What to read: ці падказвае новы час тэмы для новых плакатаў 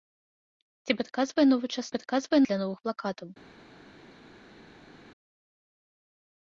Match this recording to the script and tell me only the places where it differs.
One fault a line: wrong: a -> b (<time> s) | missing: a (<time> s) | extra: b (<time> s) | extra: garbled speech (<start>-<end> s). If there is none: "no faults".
wrong: тэмы -> падказвае (2.0 s)